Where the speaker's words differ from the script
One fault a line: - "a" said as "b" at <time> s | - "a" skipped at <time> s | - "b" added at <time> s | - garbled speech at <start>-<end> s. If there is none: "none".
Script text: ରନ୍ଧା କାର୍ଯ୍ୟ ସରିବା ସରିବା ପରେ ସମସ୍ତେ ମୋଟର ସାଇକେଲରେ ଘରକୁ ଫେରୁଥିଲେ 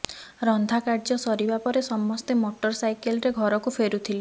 - "ସରିବା" skipped at 1.6 s